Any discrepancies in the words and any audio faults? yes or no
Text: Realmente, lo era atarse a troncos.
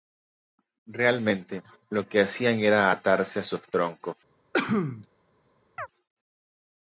yes